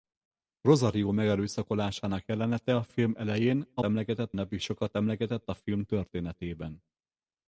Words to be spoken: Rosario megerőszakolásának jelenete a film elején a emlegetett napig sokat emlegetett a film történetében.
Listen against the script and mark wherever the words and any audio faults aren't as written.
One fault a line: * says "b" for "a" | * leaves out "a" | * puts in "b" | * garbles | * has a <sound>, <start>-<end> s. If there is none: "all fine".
all fine